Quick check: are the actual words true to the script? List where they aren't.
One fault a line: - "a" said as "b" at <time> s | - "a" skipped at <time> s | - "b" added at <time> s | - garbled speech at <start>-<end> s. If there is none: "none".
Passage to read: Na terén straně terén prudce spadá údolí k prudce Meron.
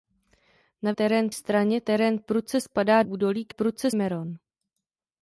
none